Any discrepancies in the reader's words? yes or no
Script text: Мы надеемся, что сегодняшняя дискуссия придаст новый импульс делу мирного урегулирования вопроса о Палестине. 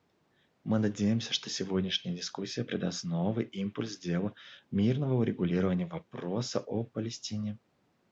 no